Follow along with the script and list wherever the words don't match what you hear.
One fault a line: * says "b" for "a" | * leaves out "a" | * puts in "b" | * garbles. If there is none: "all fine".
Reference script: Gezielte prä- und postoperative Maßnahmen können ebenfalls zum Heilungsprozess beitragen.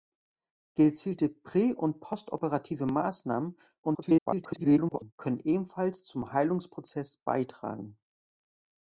* garbles